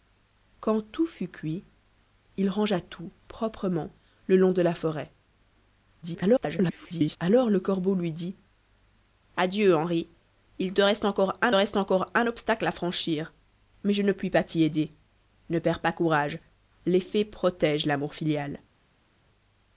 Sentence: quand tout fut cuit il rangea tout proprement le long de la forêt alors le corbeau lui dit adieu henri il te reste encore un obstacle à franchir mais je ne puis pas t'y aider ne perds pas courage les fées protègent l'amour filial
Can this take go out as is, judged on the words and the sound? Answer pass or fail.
fail